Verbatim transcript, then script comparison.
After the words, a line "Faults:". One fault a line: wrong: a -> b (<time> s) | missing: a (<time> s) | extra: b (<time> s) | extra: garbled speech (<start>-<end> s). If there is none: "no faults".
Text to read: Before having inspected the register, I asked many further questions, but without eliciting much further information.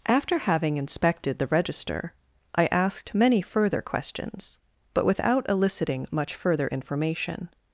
After having inspected the register, I asked many further questions, but without eliciting much further information.
Faults:
wrong: Before -> After (0.1 s)